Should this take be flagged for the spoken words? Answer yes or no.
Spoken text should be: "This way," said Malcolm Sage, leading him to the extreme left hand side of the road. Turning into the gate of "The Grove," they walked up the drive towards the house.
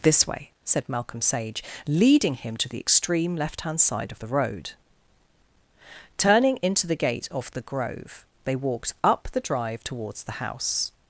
no